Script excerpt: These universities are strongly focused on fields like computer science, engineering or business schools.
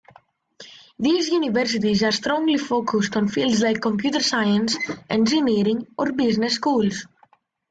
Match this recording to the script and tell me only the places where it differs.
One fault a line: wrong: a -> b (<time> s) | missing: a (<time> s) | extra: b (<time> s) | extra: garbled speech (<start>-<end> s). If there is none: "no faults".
no faults